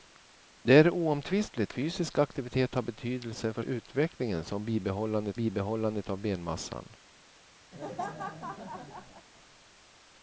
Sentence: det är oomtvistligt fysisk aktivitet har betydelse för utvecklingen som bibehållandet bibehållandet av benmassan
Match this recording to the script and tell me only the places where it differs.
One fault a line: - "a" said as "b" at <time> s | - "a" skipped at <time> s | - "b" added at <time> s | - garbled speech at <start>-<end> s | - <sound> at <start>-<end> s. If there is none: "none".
- laugh at 7.7-9.3 s